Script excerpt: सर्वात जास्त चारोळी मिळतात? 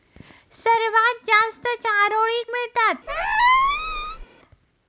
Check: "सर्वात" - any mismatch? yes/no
no